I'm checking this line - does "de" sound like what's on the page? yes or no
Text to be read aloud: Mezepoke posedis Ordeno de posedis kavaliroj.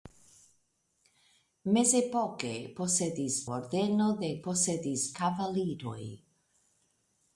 yes